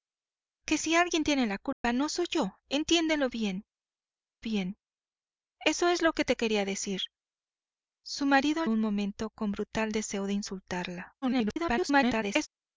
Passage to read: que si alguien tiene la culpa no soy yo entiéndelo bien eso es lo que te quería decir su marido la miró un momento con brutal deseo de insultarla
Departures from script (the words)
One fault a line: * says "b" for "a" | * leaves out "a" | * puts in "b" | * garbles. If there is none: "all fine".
* puts in "bien"
* leaves out "la miró"
* garbles